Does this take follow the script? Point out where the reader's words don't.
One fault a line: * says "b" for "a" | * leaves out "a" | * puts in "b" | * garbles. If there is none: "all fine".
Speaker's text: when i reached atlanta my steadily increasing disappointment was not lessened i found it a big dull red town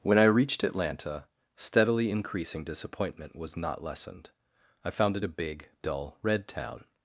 * leaves out "my"